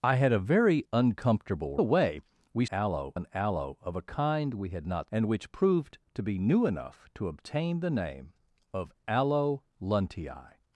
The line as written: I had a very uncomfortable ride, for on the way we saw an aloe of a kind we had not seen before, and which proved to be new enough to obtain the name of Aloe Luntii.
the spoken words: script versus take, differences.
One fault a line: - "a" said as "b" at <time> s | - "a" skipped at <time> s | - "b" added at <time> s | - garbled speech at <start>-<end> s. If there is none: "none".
- "ride for on" skipped at 1.8 s
- "saw" said as "aloe" at 2.7 s
- "seen before" skipped at 5.1 s